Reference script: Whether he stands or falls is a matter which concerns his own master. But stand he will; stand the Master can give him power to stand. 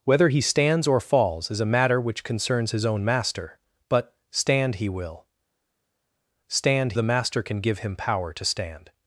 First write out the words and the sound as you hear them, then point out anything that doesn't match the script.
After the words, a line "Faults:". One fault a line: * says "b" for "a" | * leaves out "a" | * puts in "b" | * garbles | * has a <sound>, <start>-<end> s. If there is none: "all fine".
Whether he stands or falls is a matter which concerns his own master. But stand he will; stand the Master can give him power to stand.
Faults:
all fine